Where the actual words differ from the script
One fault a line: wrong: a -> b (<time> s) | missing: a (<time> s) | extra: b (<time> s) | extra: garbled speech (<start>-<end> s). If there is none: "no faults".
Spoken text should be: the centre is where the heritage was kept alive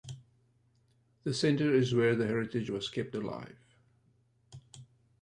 no faults